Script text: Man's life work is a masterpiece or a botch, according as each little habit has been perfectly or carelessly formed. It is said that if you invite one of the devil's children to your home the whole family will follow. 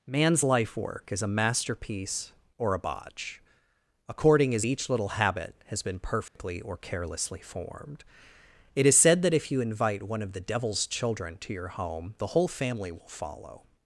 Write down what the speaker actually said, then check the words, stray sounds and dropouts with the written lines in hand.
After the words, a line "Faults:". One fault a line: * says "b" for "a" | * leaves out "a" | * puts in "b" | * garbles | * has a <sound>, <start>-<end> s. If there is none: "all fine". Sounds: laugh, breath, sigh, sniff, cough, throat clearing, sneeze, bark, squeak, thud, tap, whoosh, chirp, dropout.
Man's life work is a masterpiece or a botch, according as each little habit has been perfectly or carelessly formed. It is said that if you invite one of the devil's children to your home the whole family will follow.
Faults:
* has a dropout, 6.3-6.4 s